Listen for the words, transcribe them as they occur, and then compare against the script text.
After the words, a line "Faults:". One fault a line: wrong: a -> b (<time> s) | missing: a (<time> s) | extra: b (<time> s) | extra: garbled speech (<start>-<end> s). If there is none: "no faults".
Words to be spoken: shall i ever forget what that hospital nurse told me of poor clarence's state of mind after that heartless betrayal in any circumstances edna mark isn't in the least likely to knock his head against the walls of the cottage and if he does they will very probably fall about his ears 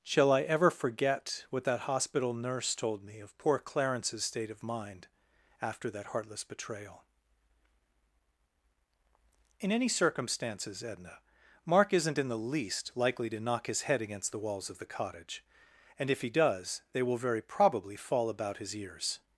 shall i ever forget what that hospital nurse told me of poor clarence's state of mind after that heartless betrayal in any circumstances edna mark isn't in the least likely to knock his head against the walls of the cottage and if he does they will very probably fall about his ears
Faults:
no faults